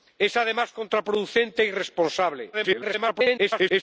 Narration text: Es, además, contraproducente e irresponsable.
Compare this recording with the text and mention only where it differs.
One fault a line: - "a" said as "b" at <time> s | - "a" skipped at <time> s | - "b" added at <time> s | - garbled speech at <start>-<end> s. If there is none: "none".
- garbled speech at 2.5-3.8 s